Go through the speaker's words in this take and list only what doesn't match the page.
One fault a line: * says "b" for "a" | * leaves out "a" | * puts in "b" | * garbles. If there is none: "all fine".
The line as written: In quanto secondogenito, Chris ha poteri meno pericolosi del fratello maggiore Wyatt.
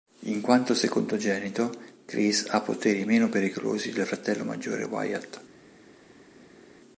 all fine